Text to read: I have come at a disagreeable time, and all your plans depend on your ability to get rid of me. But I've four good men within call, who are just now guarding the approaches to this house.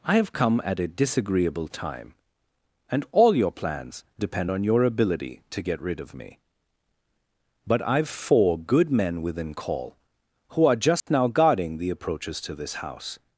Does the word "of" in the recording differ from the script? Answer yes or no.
no